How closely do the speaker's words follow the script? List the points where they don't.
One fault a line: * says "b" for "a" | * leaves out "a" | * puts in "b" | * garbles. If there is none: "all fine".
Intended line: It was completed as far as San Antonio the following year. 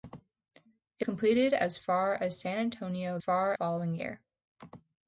* leaves out "was"
* says "far" for "the"